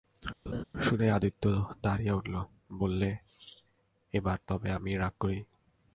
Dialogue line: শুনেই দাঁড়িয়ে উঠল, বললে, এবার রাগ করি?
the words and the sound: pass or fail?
fail